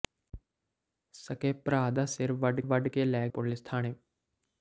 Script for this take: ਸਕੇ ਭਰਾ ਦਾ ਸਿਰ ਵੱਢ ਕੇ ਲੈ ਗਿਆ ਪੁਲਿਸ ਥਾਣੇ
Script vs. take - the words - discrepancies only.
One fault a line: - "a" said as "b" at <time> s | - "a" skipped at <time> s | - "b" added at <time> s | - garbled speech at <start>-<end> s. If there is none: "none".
- "ਵੱਢ" added at 2.6 s
- "ਗਿਆ" skipped at 3.3 s